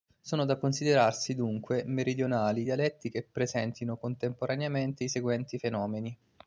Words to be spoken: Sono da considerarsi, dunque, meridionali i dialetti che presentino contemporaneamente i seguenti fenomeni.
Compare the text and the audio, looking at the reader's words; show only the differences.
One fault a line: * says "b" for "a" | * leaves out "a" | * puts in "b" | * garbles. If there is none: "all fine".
all fine